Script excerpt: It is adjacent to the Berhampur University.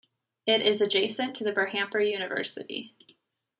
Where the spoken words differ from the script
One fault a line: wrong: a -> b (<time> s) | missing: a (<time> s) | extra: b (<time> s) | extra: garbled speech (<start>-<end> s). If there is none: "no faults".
no faults